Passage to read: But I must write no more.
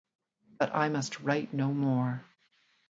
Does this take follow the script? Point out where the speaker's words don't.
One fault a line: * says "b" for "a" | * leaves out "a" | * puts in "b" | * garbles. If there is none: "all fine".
all fine